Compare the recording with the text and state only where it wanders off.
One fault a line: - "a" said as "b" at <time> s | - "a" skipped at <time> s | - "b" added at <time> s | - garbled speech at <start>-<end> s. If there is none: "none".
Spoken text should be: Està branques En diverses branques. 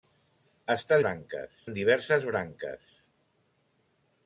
none